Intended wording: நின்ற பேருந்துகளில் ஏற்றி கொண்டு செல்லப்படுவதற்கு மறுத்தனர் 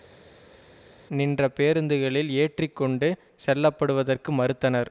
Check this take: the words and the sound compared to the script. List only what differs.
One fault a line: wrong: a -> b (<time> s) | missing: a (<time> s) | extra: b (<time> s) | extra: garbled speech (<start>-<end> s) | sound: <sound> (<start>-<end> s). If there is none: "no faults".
no faults